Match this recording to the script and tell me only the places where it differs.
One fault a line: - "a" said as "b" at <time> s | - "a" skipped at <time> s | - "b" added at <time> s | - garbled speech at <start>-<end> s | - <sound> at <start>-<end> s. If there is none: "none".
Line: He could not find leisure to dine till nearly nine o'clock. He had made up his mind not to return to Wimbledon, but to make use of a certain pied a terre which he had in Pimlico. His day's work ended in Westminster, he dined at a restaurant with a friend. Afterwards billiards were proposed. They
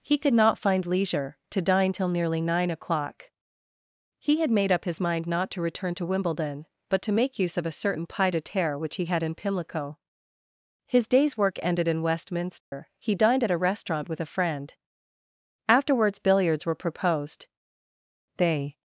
- dropout at 12.6-12.7 s